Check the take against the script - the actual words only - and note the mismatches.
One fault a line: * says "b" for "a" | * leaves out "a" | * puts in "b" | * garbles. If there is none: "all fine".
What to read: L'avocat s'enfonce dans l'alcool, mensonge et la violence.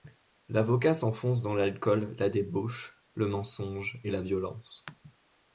* puts in "la débauche le"